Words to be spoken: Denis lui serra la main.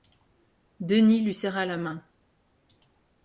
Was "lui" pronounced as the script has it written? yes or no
yes